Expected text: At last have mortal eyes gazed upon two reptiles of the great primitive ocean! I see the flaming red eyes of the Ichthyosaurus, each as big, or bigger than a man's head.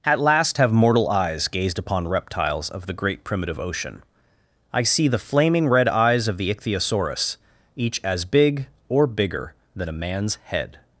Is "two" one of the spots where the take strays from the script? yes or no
yes